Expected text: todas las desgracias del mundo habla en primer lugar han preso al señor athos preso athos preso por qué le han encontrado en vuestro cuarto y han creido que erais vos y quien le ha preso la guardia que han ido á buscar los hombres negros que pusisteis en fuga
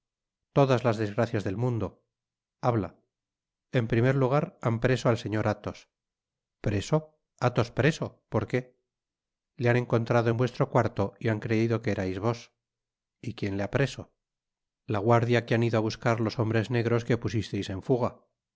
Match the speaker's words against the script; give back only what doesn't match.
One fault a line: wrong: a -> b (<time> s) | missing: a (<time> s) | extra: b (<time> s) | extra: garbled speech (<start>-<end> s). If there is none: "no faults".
no faults